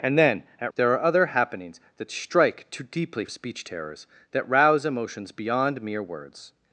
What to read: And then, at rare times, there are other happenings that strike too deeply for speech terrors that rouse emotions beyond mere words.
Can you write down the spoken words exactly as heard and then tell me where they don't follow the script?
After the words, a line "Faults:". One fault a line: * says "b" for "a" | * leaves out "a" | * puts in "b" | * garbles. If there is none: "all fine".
And then, at there are other happenings that strike too deeply speech terrors that rouse emotions beyond mere words.
Faults:
* leaves out "rare times"
* leaves out "for"